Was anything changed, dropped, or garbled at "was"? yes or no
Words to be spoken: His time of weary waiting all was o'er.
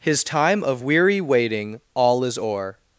yes